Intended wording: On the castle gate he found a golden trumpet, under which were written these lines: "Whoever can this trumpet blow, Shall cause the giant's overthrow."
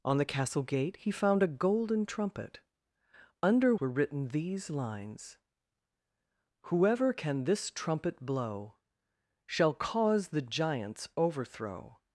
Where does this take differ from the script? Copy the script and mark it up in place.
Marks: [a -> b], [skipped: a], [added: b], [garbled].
On the castle gate he found a golden trumpet, under [skipped: which] were written these lines: "Whoever can this trumpet blow, Shall cause the giant's overthrow."